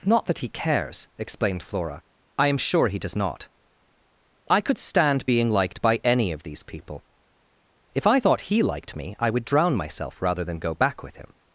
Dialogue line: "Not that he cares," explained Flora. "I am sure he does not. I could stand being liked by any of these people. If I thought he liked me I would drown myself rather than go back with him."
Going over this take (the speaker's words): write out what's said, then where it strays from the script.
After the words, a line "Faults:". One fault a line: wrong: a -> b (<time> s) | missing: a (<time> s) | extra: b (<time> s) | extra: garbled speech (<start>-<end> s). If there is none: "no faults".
"Not that he cares," explained Flora. "I am sure he does not. I could stand being liked by any of these people. If I thought he liked me I would drown myself rather than go back with him."
Faults:
no faults